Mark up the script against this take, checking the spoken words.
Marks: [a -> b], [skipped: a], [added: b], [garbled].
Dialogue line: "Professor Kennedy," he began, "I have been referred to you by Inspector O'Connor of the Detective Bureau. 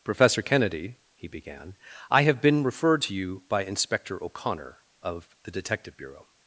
"Professor Kennedy," he began, "I have been referred to you by Inspector O'Connor of the Detective Bureau.